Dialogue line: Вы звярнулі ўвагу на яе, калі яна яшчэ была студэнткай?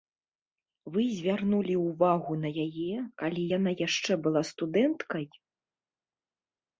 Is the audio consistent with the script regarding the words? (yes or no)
yes